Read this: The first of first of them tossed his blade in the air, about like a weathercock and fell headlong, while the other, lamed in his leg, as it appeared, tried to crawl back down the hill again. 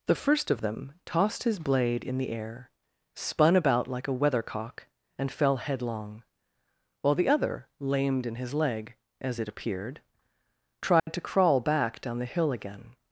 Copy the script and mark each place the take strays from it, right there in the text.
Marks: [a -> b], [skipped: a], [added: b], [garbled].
The first of [skipped: first of] them tossed his blade in the air, [added: spun] about like a weathercock and fell headlong, while the other, lamed in his leg, as it appeared, tried to crawl back down the hill again.